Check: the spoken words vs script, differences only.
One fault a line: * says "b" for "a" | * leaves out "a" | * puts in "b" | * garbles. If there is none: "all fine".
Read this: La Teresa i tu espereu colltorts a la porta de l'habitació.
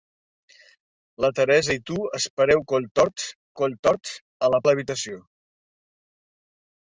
* puts in "colltorts"
* leaves out "porta"